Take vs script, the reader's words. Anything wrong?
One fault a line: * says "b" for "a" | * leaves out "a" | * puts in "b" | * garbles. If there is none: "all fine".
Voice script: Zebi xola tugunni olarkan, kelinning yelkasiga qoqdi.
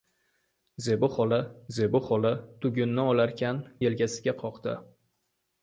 * puts in "zebi xola"
* leaves out "kelinning"